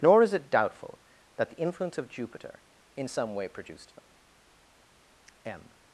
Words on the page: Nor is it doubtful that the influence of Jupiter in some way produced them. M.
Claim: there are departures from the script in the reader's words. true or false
false